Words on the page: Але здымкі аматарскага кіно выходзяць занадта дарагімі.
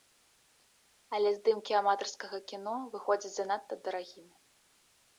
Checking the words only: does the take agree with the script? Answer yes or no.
yes